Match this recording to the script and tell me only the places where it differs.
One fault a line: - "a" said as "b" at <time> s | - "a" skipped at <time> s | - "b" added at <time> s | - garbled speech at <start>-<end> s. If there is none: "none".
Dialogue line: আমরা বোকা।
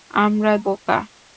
none